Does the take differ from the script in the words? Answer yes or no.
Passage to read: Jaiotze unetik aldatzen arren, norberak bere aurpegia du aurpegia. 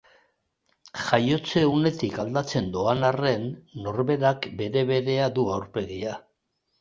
yes